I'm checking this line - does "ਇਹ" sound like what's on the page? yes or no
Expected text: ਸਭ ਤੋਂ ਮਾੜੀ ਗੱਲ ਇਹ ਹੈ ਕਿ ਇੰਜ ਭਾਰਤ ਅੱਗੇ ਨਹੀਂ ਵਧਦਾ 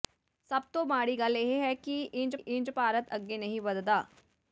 yes